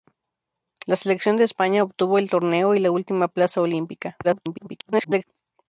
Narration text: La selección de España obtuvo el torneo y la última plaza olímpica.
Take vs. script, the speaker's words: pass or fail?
fail